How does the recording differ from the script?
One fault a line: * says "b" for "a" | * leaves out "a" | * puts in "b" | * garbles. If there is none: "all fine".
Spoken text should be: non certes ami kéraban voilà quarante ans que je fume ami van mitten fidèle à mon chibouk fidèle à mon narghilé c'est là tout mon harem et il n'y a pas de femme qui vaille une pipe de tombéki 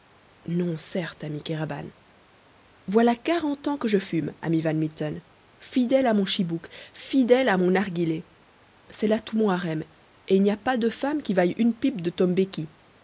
all fine